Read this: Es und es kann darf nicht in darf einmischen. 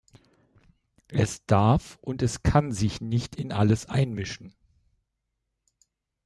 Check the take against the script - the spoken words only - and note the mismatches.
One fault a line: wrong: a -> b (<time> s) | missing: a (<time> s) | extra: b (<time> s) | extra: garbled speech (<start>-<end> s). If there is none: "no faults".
extra: darf (1.4 s)
wrong: darf -> sich (2.7 s)
wrong: darf -> alles (3.5 s)